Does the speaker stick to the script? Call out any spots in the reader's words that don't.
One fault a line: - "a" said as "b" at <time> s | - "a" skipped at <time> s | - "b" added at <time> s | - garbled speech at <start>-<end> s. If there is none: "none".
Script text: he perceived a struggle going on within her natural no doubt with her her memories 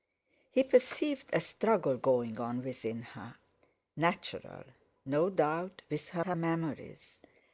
none